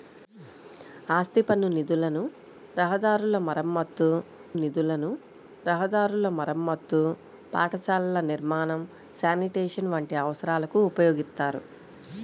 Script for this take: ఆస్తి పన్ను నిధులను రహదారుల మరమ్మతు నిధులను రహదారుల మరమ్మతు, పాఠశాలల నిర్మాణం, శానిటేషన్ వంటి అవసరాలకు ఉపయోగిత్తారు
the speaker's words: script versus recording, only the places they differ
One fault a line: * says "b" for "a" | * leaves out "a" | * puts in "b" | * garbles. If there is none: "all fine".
all fine